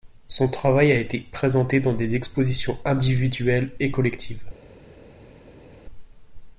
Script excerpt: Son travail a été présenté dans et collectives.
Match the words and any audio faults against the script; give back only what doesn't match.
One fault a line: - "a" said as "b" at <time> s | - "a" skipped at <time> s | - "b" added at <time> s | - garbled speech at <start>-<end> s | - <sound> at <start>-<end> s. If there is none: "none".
- "des expositions individuelles" added at 1.9 s